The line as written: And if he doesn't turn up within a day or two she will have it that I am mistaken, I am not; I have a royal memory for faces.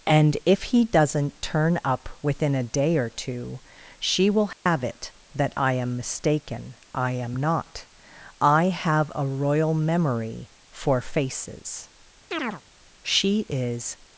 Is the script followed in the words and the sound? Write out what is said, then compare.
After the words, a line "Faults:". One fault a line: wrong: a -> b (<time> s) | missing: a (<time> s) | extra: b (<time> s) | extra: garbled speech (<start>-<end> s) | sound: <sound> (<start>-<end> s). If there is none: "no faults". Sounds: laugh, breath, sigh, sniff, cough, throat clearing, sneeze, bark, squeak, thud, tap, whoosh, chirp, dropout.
And if he doesn't turn up within a day or two she will have it that I am mistaken, I am not; I have a royal memory for faces. She is
Faults:
sound: dropout (4.5-4.7 s)
sound: chirp (12.3-12.6 s)
extra: She is (13.0 s)